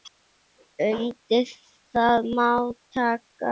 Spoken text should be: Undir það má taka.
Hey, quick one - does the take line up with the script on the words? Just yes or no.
yes